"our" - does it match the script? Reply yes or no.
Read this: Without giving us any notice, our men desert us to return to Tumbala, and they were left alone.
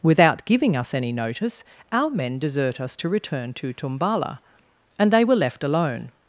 yes